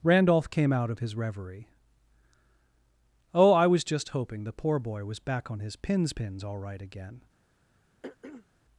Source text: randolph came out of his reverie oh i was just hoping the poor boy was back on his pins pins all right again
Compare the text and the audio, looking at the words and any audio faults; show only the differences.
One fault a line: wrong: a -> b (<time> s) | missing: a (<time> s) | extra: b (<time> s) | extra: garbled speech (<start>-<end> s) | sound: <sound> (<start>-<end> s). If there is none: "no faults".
sound: throat clearing (8.0-8.5 s)